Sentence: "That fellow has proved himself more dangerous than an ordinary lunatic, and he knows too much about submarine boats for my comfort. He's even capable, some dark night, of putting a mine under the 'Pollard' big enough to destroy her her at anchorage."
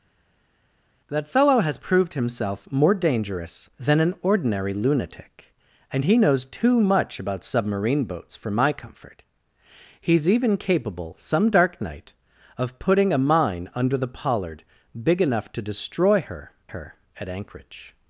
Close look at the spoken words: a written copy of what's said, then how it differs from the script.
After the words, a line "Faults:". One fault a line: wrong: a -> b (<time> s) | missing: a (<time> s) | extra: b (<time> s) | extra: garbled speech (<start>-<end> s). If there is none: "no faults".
"That fellow has proved himself more dangerous than an ordinary lunatic, and he knows too much about submarine boats for my comfort. He's even capable, some dark night, of putting a mine under the 'Pollard' big enough to destroy her her at anchorage."
Faults:
no faults